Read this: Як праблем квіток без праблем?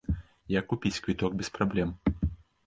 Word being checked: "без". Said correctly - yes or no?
yes